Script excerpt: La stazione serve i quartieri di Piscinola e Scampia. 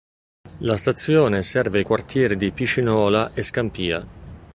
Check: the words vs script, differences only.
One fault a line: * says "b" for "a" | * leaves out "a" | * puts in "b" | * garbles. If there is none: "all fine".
all fine